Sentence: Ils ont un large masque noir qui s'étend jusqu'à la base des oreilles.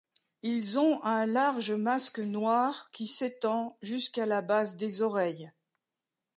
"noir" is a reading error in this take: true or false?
false